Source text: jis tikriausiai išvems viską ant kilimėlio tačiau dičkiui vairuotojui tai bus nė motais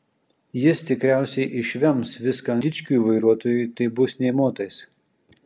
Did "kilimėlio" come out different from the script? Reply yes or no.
yes